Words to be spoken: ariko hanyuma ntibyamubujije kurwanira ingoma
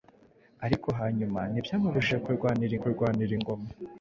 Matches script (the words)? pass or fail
fail